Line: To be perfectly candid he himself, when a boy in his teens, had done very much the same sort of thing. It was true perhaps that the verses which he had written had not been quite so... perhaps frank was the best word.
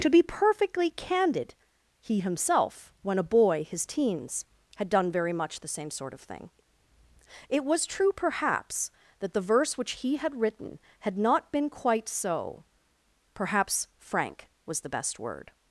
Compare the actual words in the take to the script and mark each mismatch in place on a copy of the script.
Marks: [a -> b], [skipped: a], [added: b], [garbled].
To be perfectly candid he himself, when a boy [skipped: in] his teens, had done very much the same sort of thing. It was true perhaps that the [verses -> verse] which he had written had not been quite so... perhaps frank was the best word.